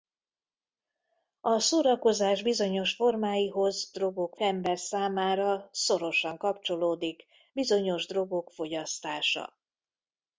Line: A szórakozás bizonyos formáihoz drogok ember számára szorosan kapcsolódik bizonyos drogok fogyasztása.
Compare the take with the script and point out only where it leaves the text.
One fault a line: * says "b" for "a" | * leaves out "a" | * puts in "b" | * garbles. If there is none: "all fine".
all fine